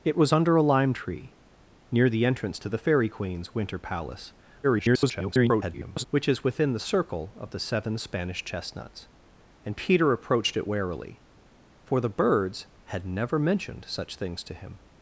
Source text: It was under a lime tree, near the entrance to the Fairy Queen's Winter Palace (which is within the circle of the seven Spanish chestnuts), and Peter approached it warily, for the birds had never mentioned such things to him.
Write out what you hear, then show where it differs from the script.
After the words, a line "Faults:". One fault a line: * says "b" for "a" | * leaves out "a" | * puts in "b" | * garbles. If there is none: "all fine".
It was under a lime tree, near the entrance to the Fairy Queen's Winter Palace [garbled] (which is within the circle of the seven Spanish chestnuts), and Peter approached it warily, for the birds had never mentioned such things to him.
Faults:
* garbles